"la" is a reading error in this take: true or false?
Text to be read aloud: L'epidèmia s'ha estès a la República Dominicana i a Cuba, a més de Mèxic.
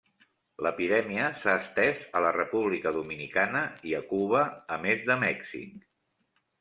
false